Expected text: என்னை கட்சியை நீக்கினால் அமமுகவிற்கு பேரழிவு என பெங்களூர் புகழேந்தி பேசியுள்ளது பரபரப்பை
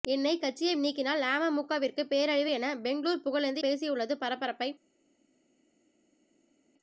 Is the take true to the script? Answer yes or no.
yes